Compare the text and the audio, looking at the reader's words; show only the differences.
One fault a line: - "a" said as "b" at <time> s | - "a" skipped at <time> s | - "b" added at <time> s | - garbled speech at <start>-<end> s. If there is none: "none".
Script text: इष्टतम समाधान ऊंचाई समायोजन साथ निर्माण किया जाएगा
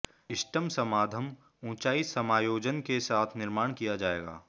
- "के" added at 2.8 s